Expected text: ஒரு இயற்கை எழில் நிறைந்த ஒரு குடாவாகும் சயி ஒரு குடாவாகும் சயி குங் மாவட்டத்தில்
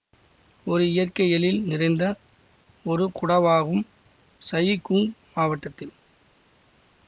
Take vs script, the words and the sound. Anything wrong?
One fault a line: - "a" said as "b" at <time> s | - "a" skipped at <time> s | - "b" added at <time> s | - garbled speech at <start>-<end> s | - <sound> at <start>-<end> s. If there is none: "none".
- "ஒரு குடாவாகும் சயி" skipped at 4.8 s